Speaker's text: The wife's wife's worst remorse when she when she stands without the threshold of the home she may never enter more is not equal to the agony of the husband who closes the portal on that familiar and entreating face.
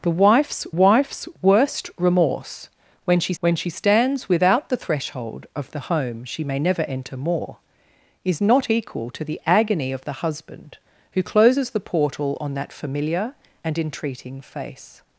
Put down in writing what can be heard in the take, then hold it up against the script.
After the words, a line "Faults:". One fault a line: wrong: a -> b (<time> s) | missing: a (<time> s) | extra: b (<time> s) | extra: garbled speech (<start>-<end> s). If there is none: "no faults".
The wife's wife's worst remorse when she when she stands without the threshold of the home she may never enter more is not equal to the agony of the husband who closes the portal on that familiar and entreating face.
Faults:
no faults